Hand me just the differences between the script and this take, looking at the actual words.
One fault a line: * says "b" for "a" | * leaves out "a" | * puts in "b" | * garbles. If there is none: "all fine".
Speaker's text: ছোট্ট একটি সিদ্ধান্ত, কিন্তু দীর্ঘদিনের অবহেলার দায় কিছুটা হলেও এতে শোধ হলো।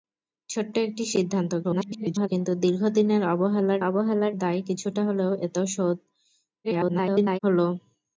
* garbles
* puts in "অবহেলার"
* garbles